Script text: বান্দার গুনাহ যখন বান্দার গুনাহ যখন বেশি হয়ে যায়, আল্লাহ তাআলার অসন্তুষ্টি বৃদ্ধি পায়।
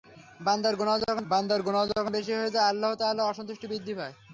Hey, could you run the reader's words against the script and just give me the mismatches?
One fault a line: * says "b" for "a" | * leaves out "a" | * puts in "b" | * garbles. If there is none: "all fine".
all fine